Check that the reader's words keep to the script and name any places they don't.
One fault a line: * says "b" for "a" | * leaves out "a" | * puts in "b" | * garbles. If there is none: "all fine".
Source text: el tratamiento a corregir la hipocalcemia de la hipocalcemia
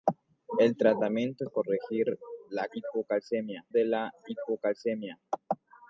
all fine